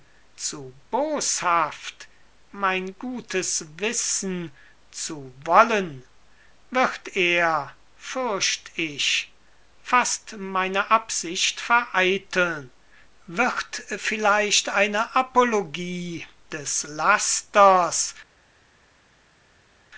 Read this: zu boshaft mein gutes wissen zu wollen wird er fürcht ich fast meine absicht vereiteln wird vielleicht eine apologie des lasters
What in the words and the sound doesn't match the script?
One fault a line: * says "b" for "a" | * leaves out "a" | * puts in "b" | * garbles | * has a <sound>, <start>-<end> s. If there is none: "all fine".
all fine